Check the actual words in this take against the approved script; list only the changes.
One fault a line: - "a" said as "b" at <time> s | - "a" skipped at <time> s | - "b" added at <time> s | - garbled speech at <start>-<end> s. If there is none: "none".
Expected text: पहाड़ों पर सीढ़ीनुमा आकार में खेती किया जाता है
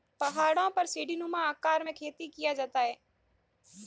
none